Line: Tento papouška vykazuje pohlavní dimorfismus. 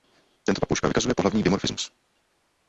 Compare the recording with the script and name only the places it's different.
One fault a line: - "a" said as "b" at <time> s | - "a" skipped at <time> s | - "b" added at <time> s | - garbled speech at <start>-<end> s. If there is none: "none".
none